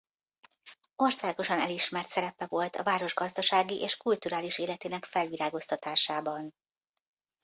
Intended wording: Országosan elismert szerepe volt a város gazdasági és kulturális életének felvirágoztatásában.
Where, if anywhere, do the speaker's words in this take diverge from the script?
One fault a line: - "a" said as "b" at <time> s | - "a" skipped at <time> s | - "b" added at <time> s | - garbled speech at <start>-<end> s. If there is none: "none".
none